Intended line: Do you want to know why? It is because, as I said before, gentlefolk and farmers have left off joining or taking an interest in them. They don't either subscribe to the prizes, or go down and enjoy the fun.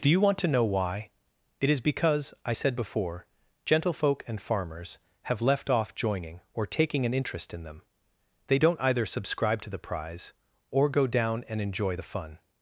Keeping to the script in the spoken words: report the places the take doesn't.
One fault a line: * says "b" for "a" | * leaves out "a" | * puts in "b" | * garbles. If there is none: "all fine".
* leaves out "as"
* says "prize" for "prizes"